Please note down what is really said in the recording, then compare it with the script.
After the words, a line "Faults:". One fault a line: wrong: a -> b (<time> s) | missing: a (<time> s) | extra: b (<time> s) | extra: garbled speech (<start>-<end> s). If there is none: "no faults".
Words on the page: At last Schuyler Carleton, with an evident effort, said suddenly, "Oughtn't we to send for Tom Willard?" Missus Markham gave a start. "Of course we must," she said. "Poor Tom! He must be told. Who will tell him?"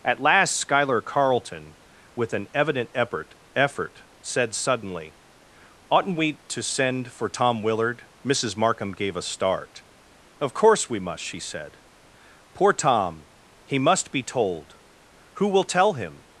At last Schuyler Carleton, with an evident effort effort, said suddenly, "Oughtn't we to send for Tom Willard?" Missus Markham gave a start. "Of course we must," she said. "Poor Tom! He must be told. Who will tell him?"
Faults:
extra: effort (3.5 s)